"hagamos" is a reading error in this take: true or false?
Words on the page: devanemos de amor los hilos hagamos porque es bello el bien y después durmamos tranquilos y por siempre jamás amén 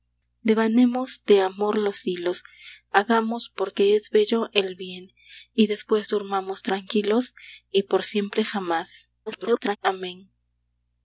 false